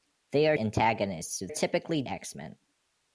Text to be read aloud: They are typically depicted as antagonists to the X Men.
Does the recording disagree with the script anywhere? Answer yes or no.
yes